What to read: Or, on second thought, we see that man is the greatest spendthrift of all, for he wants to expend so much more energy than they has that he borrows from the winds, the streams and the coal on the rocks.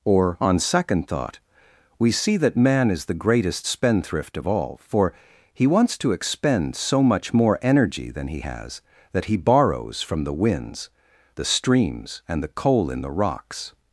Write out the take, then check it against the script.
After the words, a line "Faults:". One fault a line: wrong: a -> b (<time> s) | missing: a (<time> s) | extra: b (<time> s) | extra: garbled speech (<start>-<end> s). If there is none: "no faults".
Or, on second thought, we see that man is the greatest spendthrift of all, for he wants to expend so much more energy than he has that he borrows from the winds, the streams and the coal in the rocks.
Faults:
wrong: they -> he (8.3 s)
wrong: on -> in (12.9 s)